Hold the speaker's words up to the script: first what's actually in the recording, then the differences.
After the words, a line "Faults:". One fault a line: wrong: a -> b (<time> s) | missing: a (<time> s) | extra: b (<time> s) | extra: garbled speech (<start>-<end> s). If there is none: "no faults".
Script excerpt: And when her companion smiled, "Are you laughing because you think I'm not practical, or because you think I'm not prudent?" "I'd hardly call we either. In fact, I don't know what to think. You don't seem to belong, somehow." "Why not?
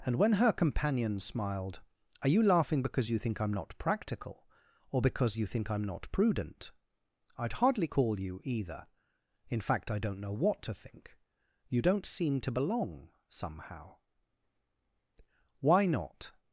And when her companion smiled, "Are you laughing because you think I'm not practical, or because you think I'm not prudent?" "I'd hardly call you either. In fact, I don't know what to think. You don't seem to belong, somehow." "Why not?
Faults:
wrong: we -> you (8.2 s)